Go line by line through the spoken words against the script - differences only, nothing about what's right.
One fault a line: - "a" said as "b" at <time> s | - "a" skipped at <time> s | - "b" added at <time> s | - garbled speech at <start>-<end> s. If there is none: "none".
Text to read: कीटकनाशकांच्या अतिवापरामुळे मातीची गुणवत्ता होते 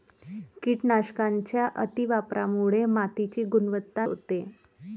none